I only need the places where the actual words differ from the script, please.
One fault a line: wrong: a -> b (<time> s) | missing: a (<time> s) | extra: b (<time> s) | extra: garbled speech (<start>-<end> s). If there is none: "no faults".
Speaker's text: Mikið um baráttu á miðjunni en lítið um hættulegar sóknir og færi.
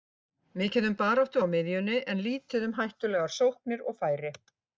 no faults